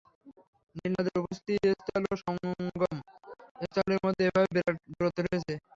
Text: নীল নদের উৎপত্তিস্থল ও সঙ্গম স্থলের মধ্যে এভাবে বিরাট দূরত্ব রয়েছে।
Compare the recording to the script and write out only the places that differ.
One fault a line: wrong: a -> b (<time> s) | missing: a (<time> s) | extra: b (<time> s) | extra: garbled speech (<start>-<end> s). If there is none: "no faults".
no faults